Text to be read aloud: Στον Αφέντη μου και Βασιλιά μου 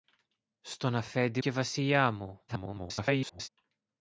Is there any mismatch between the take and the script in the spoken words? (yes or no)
yes